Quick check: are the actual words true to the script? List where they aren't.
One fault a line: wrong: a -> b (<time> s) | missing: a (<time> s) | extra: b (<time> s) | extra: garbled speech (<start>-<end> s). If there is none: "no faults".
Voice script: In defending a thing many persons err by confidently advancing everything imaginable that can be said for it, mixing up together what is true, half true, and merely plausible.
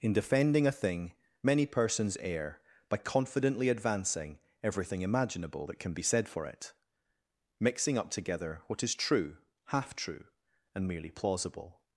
no faults